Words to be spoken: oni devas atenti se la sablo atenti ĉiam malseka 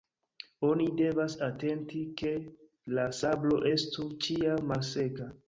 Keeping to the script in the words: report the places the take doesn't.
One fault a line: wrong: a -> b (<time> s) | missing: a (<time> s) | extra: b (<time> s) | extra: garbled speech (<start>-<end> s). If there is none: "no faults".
wrong: se -> ke (2.2 s)
wrong: atenti -> estu (3.7 s)